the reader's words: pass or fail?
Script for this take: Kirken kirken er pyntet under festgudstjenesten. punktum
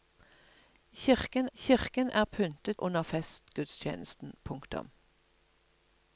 pass